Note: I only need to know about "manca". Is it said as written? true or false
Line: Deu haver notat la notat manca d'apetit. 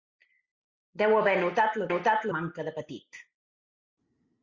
true